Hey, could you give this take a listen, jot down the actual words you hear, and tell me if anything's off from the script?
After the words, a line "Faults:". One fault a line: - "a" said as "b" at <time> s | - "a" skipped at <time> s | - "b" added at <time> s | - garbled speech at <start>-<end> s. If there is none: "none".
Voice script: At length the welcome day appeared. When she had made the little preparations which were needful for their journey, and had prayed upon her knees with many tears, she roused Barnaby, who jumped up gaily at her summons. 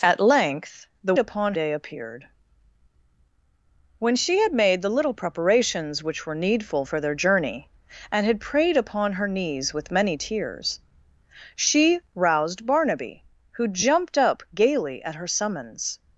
At length the upon day appeared. When she had made the little preparations which were needful for their journey, and had prayed upon her knees with many tears, she roused Barnaby, who jumped up gaily at her summons.
Faults:
- "welcome" said as "upon" at 1.2 s